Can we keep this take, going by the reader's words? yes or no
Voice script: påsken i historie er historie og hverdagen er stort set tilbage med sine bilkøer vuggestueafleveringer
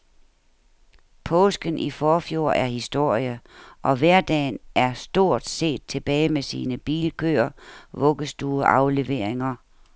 no